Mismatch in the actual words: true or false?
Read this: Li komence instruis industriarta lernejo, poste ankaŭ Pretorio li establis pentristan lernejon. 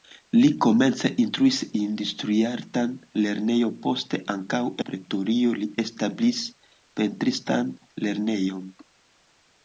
false